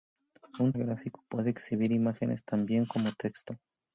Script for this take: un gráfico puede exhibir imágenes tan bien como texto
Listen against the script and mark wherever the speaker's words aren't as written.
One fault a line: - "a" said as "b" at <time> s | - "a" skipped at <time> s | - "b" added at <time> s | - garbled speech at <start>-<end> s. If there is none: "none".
none